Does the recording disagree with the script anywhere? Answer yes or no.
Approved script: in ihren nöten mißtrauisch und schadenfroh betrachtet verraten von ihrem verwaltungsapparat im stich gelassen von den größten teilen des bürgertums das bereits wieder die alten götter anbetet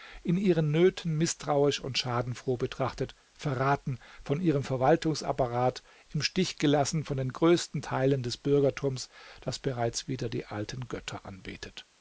no